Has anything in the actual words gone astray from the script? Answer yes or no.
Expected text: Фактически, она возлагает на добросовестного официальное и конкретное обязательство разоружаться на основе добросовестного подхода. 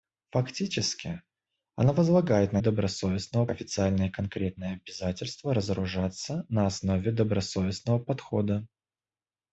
no